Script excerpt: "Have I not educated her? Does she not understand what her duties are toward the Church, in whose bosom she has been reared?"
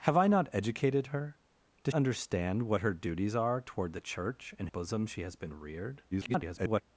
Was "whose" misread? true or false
true